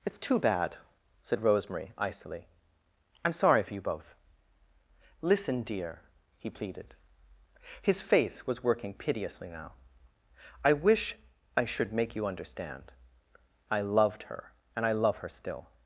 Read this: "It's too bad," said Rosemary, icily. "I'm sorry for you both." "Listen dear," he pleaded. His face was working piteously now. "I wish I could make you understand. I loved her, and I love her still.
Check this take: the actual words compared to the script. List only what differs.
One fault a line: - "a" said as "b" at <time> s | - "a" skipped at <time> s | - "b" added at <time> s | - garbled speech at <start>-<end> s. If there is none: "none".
- "could" said as "should" at 11.7 s